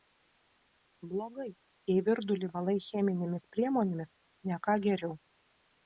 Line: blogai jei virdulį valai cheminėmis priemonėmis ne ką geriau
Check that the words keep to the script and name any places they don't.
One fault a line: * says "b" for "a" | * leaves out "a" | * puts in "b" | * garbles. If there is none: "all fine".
all fine